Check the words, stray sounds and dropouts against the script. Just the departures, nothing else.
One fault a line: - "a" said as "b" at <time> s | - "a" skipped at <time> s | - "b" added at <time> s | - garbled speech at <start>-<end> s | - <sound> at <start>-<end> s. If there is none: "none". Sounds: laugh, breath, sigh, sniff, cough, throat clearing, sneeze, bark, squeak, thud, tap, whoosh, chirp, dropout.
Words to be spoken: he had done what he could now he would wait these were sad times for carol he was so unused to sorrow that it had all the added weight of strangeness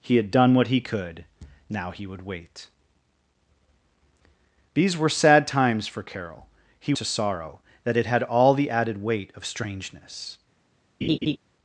- "was so unused" skipped at 7.0 s
- laugh at 11.0-11.4 s